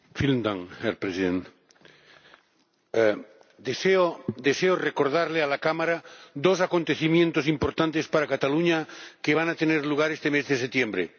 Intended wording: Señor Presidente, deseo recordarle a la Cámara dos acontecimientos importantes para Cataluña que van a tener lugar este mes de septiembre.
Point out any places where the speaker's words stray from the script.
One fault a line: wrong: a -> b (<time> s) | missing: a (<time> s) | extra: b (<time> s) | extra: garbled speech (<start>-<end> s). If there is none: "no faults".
no faults